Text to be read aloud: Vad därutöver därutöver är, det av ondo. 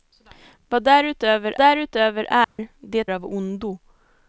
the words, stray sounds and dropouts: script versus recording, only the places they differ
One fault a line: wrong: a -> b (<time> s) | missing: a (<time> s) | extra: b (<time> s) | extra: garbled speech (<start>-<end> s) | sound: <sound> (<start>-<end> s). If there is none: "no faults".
sound: dropout (2.4-2.6 s)